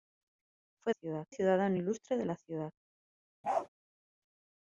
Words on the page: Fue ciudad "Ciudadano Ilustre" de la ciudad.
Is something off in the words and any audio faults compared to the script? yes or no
yes